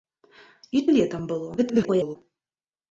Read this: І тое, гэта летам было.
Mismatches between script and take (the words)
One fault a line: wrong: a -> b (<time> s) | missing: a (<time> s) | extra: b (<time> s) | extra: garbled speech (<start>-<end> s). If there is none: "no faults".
missing: тое гэта (0.8 s)
extra: garbled speech (1.6-2.2 s)